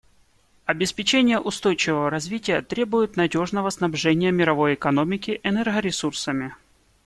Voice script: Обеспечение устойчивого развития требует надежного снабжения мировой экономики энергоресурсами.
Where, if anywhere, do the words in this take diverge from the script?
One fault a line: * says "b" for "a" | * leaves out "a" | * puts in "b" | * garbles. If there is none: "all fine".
all fine